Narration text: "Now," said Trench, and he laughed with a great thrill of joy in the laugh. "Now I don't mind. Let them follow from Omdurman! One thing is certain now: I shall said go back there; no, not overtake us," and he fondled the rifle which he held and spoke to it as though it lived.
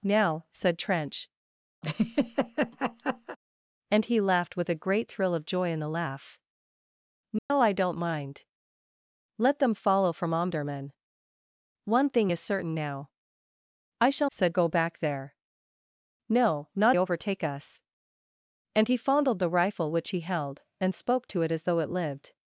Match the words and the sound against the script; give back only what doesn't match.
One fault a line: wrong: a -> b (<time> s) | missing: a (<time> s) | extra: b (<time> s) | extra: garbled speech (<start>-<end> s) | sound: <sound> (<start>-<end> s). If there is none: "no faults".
sound: laugh (1.8-3.4 s)
sound: dropout (7.4-7.5 s)